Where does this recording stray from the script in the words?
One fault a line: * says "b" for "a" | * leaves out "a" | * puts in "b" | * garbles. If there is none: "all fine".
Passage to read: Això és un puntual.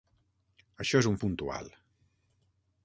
all fine